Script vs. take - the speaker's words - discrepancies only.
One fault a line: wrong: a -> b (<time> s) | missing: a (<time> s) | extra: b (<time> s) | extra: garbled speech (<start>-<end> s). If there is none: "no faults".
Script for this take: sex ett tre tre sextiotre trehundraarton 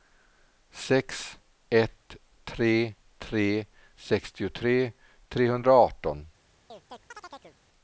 no faults